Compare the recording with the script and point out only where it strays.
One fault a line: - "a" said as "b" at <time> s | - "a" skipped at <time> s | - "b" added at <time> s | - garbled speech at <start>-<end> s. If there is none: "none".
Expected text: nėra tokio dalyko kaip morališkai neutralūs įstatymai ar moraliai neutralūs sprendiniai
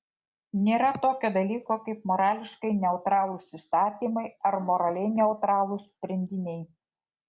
none